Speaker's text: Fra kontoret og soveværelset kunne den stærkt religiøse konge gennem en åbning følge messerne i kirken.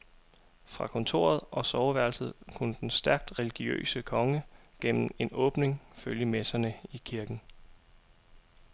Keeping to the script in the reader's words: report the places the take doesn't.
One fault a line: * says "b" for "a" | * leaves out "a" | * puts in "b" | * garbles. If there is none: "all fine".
all fine